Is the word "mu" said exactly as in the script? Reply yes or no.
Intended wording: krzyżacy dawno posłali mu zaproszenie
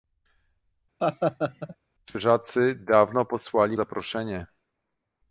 no